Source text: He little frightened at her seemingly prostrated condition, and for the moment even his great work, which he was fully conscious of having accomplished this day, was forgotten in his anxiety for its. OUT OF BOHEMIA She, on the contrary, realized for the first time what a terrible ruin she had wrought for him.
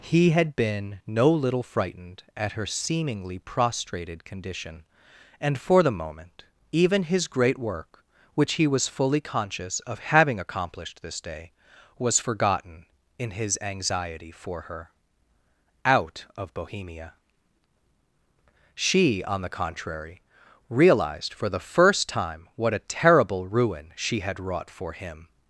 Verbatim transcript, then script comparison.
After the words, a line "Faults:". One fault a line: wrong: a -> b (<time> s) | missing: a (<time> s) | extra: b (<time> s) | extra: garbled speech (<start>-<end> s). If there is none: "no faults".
He had been no little frightened at her seemingly prostrated condition, and for the moment even his great work, which he was fully conscious of having accomplished this day, was forgotten in his anxiety for her. OUT OF BOHEMIA She, on the contrary, realized for the first time what a terrible ruin she had wrought for him.
Faults:
extra: had been no (0.3 s)
wrong: its -> her (14.6 s)